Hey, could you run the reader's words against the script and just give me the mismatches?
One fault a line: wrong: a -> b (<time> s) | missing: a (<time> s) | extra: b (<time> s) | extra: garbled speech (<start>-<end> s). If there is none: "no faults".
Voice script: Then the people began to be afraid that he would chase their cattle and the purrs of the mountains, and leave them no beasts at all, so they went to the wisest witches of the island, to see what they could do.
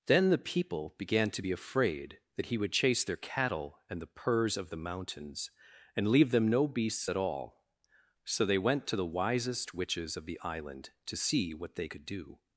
no faults